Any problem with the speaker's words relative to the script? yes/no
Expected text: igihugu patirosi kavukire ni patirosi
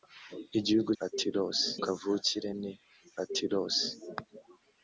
no